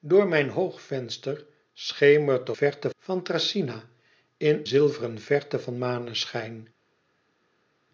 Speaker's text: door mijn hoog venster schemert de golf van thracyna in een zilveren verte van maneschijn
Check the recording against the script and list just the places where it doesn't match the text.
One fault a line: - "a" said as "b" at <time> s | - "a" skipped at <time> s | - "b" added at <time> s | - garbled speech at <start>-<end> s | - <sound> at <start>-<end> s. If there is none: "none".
- "golf" said as "verte" at 2.5 s
- "een" skipped at 4.6 s